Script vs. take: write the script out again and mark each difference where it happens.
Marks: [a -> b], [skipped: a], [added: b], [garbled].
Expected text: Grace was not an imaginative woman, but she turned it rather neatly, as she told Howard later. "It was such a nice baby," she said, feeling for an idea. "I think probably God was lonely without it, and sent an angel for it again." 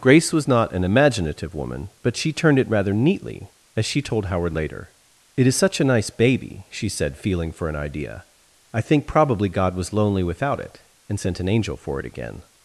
Grace was not an imaginative woman, but she turned it rather neatly, as she told Howard later. "It [was -> is] such a nice baby," she said, feeling for an idea. "I think probably God was lonely without it, and sent an angel for it again."